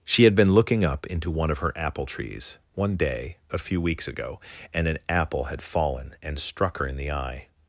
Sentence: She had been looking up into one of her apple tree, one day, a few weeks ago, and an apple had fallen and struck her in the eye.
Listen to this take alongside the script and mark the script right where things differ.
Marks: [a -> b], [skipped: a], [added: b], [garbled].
She had been looking up into one of her apple [tree, -> trees] one day, a few weeks ago, and an apple had fallen and struck her in the eye.